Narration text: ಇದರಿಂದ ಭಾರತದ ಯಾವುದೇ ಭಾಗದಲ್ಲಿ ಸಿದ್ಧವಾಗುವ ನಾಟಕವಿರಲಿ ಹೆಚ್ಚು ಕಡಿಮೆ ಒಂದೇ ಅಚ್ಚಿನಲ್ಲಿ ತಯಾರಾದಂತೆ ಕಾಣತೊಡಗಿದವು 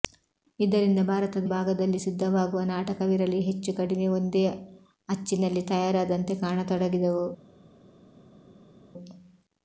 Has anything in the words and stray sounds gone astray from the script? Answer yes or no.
yes